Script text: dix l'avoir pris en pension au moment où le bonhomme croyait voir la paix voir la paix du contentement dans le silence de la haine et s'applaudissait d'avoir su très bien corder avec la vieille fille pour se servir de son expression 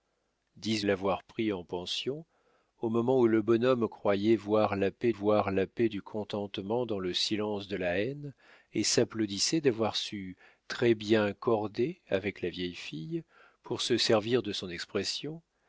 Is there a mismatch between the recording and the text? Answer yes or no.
no